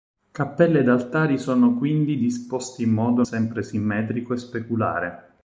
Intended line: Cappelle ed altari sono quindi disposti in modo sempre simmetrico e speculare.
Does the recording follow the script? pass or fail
pass